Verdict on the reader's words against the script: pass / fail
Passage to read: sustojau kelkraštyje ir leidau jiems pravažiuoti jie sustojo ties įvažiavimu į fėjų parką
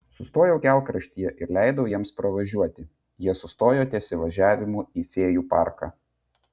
pass